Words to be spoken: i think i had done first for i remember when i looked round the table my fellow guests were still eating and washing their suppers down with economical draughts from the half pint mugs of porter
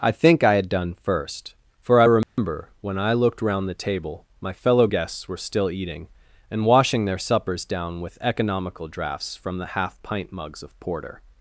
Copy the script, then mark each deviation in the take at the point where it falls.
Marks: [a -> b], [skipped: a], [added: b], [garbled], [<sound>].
i think i had done first for i remember [dropout] when i looked round the table my fellow guests were still eating and washing their suppers down with economical draughts from the half pint mugs of porter